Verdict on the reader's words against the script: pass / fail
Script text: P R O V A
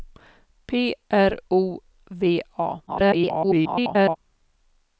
fail